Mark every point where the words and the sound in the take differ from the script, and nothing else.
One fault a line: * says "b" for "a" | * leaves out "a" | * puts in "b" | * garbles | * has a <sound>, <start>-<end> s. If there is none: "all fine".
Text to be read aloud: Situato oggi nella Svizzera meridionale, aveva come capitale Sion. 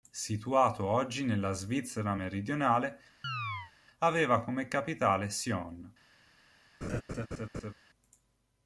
* has a chirp, 3.2-3.7 s
* has a laugh, 6.8-7.7 s